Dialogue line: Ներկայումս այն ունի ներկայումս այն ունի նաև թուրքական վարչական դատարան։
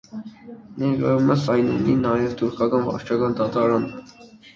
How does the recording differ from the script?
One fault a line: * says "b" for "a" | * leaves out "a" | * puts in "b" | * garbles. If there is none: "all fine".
* leaves out "ներկայումս այն ունի"